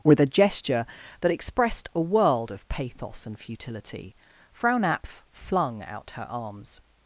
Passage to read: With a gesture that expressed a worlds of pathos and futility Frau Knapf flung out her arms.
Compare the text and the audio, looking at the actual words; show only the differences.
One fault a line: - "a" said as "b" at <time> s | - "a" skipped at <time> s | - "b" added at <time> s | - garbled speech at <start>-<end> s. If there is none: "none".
- "worlds" said as "world" at 2.0 s